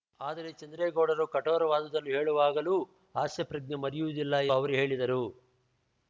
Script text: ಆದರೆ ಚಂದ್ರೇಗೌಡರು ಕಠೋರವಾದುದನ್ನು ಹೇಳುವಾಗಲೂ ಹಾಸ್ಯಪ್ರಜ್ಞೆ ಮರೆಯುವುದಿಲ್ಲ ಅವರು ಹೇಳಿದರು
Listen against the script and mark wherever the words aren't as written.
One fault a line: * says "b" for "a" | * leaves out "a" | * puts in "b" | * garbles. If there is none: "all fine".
all fine